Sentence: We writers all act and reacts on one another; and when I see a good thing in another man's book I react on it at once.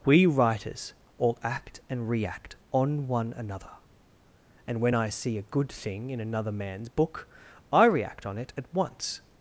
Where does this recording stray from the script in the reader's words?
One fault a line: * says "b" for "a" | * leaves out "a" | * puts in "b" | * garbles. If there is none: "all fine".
* says "react" for "reacts"